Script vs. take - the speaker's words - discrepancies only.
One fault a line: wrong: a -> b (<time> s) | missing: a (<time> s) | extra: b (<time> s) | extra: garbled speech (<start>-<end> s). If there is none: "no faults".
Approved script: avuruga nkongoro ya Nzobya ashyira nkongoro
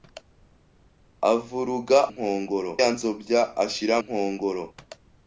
no faults